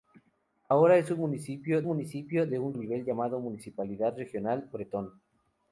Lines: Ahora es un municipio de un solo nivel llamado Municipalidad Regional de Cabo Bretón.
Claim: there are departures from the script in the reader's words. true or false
true